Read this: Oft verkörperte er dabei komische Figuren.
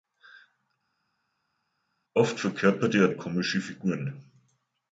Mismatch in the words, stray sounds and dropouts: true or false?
true